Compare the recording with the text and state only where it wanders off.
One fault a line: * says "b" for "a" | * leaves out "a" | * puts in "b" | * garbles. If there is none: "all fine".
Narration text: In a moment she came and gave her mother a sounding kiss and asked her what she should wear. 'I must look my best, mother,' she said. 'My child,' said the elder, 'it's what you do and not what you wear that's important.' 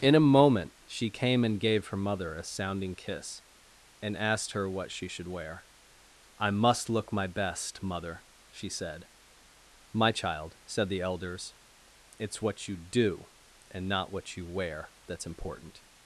* says "elders" for "elder"